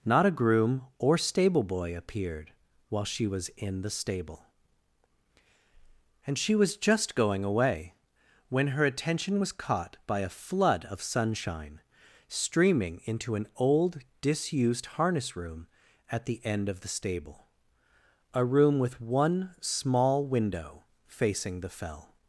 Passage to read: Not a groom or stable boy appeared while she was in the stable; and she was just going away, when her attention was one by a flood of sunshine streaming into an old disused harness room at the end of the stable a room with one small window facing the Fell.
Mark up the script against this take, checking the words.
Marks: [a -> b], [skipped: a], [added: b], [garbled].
Not a groom or stable boy appeared while she was in the stable; and she was just going away, when her attention was [one -> caught] by a flood of sunshine streaming into an old disused harness room at the end of the stable a room with one small window facing the Fell.